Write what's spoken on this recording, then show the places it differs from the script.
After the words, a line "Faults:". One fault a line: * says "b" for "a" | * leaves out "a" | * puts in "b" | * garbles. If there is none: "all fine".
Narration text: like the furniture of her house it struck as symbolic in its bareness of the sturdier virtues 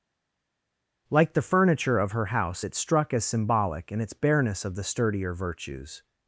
like the furniture of her house it struck as symbolic in its bareness of the sturdier virtues
Faults:
all fine